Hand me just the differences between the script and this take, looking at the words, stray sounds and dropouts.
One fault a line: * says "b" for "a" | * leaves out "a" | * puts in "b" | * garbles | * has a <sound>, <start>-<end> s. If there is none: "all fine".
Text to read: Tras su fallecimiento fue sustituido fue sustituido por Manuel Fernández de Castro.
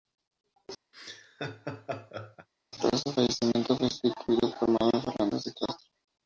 * has a laugh, 0.9-2.5 s
* leaves out "fue sustituido"